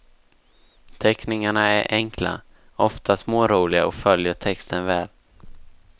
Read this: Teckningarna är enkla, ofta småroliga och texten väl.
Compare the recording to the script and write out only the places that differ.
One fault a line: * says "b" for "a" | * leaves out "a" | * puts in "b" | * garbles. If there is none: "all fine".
* puts in "följer"